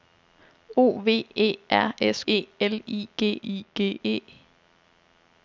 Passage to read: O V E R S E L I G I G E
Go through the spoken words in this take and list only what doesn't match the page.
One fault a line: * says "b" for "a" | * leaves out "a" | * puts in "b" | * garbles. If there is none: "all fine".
all fine